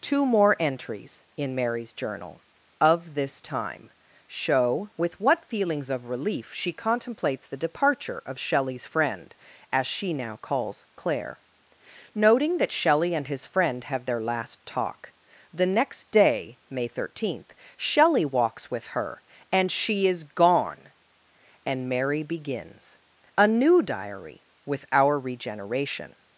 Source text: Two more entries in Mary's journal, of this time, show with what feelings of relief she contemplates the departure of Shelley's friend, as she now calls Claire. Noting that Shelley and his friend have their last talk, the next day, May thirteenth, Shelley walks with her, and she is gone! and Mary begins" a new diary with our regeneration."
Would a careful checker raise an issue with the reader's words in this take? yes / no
no